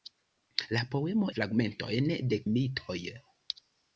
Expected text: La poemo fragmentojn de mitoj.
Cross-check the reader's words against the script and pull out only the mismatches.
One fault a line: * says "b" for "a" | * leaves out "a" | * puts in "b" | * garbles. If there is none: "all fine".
all fine